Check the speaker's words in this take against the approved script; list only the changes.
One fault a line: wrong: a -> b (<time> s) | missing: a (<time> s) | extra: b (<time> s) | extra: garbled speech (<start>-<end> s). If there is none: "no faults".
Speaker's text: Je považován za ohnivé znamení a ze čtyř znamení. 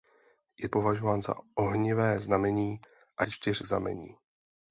no faults